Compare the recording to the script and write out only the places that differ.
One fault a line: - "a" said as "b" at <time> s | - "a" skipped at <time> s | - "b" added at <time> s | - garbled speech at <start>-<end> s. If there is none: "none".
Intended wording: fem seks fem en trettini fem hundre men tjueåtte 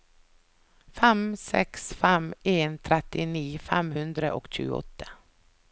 - "men" said as "og" at 4.4 s